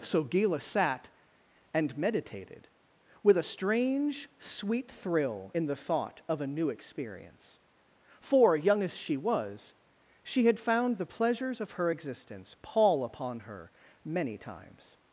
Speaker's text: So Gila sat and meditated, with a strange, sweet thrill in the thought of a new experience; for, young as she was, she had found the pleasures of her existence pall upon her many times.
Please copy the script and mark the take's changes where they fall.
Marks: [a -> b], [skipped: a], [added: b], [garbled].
So Gila sat and meditated, with a strange, sweet thrill in the thought of a new experience; for, young as she was, she had found the pleasures of her existence pall upon her many times.